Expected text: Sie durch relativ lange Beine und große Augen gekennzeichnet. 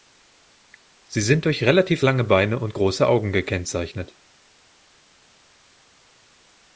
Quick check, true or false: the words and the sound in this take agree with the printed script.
false